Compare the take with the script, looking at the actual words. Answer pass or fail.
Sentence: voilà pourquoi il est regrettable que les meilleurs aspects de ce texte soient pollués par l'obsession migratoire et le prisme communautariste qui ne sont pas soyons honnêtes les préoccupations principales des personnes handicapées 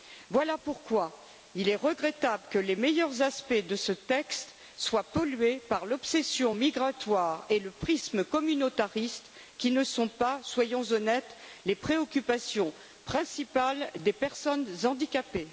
pass